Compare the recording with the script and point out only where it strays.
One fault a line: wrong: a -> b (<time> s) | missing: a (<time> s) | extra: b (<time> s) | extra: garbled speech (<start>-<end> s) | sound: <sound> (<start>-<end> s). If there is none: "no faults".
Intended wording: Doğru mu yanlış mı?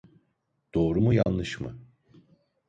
sound: dropout (1.2-1.3 s)